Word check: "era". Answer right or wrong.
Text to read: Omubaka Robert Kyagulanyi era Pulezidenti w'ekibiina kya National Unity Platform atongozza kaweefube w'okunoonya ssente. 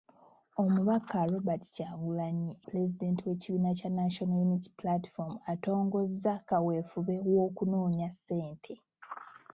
wrong